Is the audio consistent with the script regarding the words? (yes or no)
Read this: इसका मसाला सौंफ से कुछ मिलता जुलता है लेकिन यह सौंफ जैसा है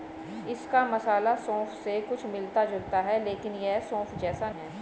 yes